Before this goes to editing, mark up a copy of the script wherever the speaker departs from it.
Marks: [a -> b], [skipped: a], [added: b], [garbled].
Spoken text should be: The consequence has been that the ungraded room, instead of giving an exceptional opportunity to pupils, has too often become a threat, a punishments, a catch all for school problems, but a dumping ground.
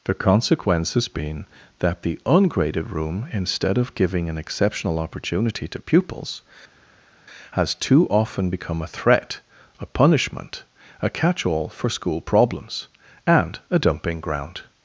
The consequence has been that the ungraded room, instead of giving an exceptional opportunity to pupils, has too often become a threat, a [punishments, -> punishment] a catch all for school problems, [but -> and] a dumping ground.